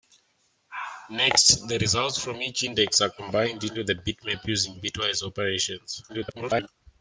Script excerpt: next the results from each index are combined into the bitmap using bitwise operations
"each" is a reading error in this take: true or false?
false